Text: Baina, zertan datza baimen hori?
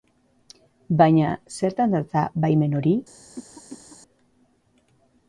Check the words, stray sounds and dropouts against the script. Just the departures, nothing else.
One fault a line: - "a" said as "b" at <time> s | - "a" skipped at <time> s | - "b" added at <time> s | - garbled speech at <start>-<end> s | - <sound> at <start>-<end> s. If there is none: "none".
- cough at 3.4-4.0 s